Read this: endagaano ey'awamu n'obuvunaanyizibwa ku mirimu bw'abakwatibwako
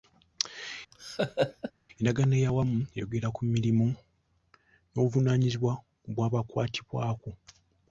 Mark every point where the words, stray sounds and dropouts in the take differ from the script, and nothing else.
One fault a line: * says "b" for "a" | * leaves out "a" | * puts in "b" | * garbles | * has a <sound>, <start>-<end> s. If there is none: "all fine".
* has a laugh, 0.9-1.7 s
* says "eyogera" for "n'obuvunaanyizibwa"
* puts in "n'obuvunaanyizibwa"